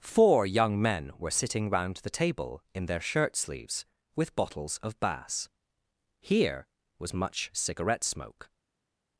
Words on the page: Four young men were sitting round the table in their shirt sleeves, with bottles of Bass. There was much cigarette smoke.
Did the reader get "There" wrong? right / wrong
wrong